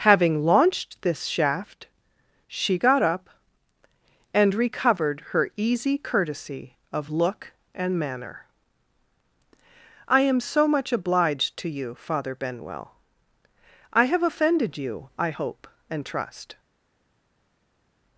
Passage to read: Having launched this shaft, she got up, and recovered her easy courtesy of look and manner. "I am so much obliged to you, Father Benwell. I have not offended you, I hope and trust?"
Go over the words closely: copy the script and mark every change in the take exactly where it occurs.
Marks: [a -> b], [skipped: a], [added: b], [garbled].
Having launched this shaft, she got up, and recovered her easy courtesy of look and manner. "I am so much obliged to you, Father Benwell. I have [skipped: not] offended you, I hope and trust?"